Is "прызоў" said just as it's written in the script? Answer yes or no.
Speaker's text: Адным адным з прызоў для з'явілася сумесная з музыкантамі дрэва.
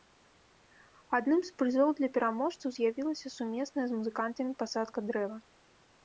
yes